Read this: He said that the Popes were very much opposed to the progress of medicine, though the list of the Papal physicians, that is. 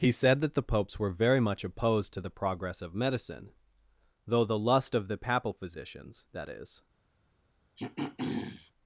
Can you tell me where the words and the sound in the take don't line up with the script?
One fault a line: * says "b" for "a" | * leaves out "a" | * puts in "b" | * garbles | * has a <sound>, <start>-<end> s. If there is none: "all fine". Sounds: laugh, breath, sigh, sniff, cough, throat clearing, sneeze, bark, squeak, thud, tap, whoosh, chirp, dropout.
* says "lust" for "list"
* has a throat clearing, 7.8-8.7 s